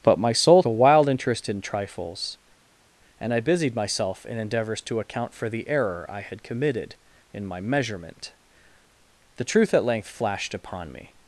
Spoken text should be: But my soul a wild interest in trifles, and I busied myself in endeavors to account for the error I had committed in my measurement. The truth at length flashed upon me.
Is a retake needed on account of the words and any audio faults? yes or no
no